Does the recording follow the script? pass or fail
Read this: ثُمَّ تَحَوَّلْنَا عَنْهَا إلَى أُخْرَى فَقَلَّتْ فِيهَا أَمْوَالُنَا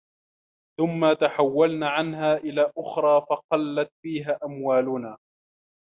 pass